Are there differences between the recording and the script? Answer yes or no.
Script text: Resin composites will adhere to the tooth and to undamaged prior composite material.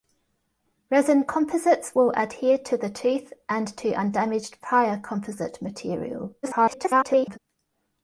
yes